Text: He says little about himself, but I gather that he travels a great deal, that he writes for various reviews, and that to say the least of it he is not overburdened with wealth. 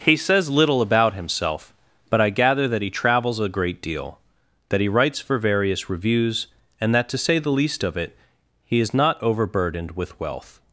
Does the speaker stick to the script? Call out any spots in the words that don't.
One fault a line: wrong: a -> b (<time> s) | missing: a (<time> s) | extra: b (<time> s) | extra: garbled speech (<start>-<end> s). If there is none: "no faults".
no faults